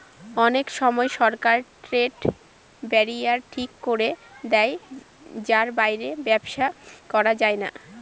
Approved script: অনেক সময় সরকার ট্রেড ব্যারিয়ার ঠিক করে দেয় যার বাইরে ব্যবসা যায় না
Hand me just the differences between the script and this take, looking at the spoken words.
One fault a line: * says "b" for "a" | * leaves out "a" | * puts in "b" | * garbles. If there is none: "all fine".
* puts in "করা"